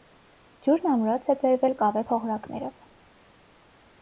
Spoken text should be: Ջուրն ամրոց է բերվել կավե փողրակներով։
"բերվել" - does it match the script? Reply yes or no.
yes